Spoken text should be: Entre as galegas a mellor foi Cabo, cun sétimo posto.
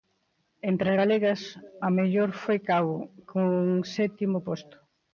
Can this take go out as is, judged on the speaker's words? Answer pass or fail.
pass